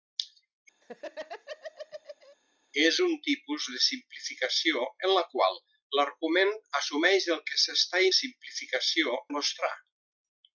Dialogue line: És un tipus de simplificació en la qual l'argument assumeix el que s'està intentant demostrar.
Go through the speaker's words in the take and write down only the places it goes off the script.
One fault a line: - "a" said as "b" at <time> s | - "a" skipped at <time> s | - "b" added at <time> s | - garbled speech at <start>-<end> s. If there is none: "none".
- "intentant" said as "simplificació" at 8.2 s